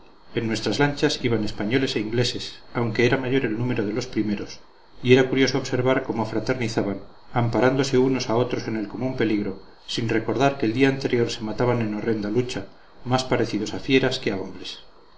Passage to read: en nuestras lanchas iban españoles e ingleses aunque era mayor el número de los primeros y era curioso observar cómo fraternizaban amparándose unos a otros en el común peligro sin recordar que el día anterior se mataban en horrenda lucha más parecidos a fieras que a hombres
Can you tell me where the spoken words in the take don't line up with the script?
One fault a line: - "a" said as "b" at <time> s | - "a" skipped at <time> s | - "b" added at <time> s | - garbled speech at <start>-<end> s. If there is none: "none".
none